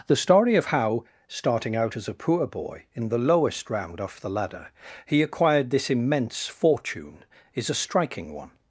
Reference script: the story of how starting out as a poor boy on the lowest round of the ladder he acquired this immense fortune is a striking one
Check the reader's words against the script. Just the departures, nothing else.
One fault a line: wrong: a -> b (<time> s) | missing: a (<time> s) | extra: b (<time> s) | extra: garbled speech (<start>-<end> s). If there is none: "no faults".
wrong: on -> in (2.9 s)
wrong: of -> off (4.0 s)